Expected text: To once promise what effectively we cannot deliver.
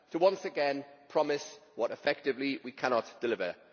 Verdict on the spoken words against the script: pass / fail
fail